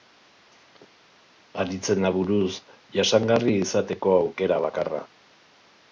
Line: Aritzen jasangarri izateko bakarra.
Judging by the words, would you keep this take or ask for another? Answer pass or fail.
fail